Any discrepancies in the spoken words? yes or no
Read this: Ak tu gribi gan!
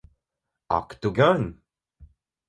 yes